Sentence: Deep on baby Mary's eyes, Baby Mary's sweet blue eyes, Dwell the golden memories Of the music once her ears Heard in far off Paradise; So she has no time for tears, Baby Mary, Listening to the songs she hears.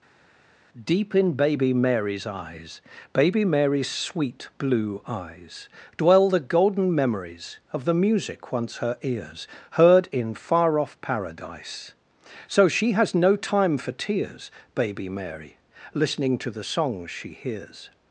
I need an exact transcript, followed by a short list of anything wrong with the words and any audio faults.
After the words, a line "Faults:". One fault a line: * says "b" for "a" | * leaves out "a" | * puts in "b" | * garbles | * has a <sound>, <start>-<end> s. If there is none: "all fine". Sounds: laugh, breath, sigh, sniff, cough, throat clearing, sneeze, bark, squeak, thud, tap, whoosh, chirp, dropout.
Deep in baby Mary's eyes, Baby Mary's sweet blue eyes, Dwell the golden memories Of the music once her ears Heard in far off Paradise; So she has no time for tears, Baby Mary, Listening to the songs she hears.
Faults:
* says "in" for "on"